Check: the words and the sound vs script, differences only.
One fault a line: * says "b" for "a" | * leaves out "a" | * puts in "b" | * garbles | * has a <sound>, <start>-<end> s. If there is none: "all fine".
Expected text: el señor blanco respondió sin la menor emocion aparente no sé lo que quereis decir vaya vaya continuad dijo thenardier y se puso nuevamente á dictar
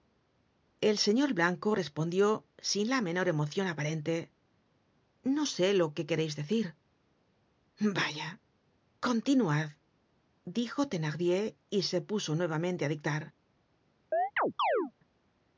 * leaves out "vaya"
* has a chirp, 14.1-14.9 s